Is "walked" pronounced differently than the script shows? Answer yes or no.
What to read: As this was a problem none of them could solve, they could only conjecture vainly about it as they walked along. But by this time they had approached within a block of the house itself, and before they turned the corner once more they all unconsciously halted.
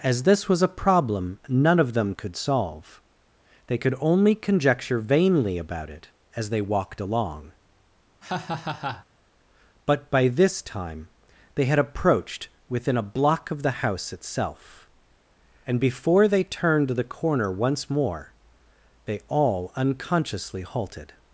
no